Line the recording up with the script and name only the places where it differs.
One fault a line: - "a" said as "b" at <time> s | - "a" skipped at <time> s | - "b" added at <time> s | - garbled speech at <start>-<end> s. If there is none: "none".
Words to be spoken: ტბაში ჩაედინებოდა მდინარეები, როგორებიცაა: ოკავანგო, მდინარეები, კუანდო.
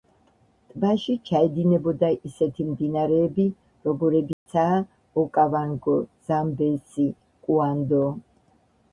- "ისეთი" added at 2.3 s
- "მდინარეები" said as "ზამბეზი" at 6.3 s